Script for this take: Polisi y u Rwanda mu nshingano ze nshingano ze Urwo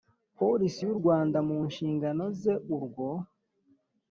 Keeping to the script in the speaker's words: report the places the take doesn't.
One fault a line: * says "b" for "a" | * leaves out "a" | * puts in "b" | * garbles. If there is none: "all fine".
* leaves out "nshingano ze"